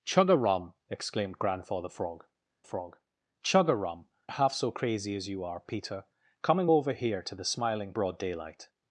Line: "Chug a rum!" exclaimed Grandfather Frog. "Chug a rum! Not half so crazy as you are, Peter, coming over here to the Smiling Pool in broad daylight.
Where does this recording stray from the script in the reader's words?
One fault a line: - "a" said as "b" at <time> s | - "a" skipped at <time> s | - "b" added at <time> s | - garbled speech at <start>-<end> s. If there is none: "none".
- "Frog" added at 2.6 s
- "Not" skipped at 4.1 s
- "Pool in" skipped at 7.9 s